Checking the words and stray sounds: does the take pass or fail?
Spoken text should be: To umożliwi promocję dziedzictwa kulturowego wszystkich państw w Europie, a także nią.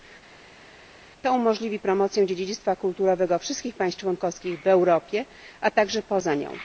fail